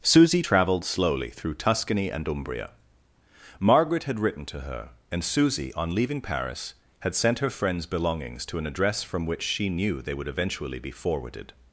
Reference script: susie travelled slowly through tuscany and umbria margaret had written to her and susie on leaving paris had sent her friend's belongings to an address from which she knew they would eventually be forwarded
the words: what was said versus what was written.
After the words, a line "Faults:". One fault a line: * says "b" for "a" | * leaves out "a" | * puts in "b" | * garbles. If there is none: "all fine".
susie travelled slowly through tuscany and umbria margaret had written to her and susie on leaving paris had sent her friend's belongings to an address from which she knew they would eventually be forwarded
Faults:
all fine